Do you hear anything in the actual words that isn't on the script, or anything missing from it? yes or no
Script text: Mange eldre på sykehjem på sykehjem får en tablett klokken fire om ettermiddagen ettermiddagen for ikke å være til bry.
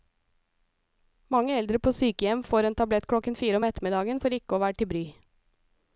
yes